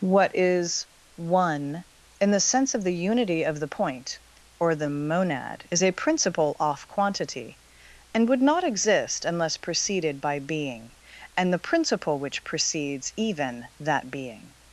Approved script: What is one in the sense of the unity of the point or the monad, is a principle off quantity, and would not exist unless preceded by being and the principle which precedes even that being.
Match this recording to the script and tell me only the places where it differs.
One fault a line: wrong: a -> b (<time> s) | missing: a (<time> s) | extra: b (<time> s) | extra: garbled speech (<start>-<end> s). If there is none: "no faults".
no faults